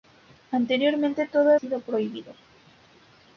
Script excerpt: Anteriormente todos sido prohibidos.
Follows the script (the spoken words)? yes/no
yes